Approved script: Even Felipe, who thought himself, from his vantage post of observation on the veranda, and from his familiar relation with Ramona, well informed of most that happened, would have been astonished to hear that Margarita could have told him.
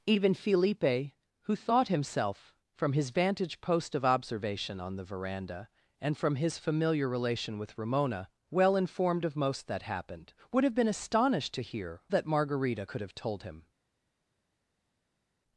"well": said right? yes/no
yes